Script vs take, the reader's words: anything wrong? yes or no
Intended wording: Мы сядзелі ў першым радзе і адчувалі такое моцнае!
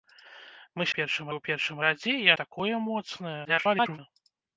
yes